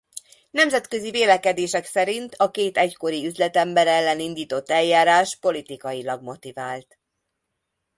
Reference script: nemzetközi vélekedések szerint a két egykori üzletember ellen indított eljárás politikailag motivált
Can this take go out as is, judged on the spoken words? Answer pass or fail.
pass